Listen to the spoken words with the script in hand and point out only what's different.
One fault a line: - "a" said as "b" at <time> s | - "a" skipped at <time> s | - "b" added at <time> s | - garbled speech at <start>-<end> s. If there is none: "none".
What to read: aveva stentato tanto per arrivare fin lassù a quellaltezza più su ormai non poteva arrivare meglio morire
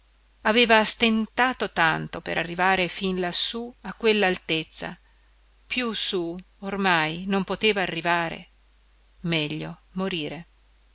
none